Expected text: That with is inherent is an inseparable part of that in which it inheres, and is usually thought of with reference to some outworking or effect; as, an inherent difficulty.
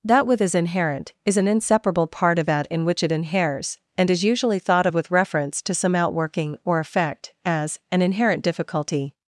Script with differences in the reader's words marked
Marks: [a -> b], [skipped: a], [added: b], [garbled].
That with is inherent is an inseparable part of that in which it inheres, and is usually thought of with reference to some outworking or effect; as, an inherent difficulty.